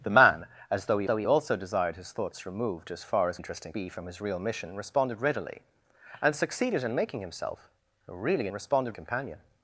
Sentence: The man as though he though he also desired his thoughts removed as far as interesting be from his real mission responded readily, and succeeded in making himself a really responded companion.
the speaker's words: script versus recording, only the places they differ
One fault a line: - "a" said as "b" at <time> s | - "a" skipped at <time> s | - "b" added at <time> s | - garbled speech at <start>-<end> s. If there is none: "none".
none